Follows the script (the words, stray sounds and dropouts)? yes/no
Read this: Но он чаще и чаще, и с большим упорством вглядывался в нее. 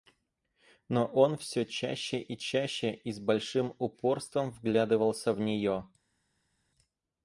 no